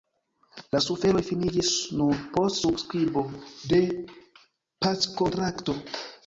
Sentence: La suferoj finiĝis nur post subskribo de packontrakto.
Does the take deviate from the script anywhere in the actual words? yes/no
no